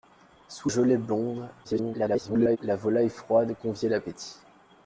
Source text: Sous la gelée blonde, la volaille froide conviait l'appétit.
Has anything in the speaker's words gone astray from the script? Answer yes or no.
yes